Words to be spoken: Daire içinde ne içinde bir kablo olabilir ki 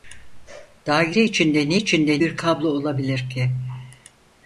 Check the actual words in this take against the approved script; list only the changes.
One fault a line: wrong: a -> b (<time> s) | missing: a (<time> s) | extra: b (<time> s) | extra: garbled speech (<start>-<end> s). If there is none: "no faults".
no faults